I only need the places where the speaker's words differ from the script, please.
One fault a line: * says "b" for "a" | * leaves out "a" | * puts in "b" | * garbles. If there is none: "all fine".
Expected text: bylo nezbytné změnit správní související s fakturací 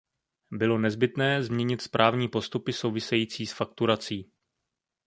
* puts in "postupy"